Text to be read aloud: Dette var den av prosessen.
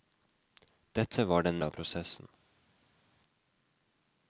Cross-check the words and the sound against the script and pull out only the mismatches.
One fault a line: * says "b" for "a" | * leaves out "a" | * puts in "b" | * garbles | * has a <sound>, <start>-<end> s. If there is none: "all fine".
all fine